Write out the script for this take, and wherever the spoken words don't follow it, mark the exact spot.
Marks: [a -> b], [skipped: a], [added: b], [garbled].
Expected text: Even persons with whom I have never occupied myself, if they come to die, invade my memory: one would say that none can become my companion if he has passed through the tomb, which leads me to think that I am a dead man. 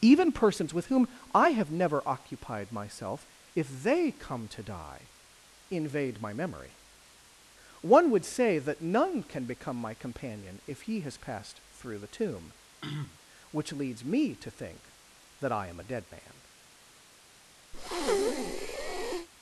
Even persons with whom I have never occupied myself, if they come to die, invade my memory: one would say that none can become my companion if he has passed through the tomb, which leads me to think that I am a dead man.